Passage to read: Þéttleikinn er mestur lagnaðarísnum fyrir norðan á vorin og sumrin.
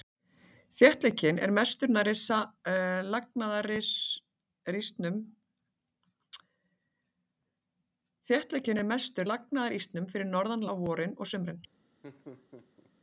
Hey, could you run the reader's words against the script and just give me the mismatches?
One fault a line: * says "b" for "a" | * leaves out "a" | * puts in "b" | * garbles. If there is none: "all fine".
all fine